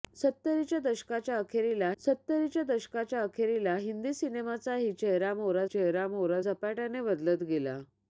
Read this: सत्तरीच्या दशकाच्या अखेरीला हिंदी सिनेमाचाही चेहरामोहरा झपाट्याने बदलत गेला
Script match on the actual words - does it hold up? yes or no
no